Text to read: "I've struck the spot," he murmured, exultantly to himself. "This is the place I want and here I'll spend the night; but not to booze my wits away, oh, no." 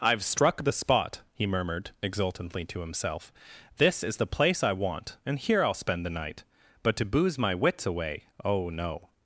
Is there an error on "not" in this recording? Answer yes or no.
yes